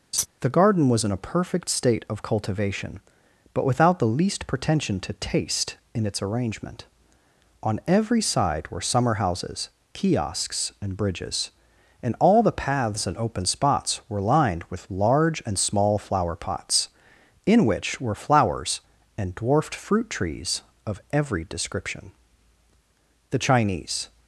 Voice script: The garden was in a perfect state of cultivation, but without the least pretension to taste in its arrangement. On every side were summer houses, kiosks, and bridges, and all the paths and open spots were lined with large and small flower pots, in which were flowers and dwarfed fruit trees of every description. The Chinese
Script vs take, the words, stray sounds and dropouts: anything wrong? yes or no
yes